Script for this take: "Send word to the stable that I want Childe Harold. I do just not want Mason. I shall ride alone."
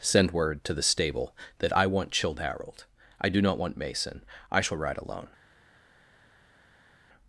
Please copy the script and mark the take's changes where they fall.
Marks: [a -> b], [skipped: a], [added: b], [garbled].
"Send word to the stable that I want Childe Harold. I do [skipped: just] not want Mason. I shall ride alone."